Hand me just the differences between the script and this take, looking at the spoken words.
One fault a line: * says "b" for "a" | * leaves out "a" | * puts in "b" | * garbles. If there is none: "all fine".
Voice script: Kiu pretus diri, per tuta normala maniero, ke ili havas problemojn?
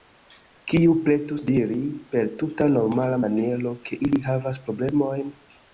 all fine